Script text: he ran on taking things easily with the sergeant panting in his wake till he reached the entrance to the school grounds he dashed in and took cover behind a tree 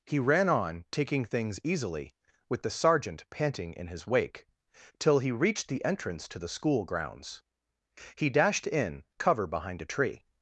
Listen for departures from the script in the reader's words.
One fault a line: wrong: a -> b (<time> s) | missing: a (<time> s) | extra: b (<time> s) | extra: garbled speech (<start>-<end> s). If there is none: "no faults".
missing: and took (9.0 s)